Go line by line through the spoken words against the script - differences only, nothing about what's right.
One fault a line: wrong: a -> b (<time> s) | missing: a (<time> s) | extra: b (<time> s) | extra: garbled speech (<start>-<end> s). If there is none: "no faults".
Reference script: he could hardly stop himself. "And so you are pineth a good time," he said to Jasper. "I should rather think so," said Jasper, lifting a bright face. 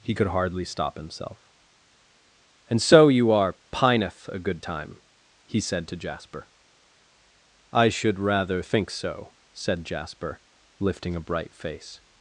no faults